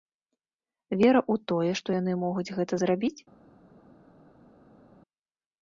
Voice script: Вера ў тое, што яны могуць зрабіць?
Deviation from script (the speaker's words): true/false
true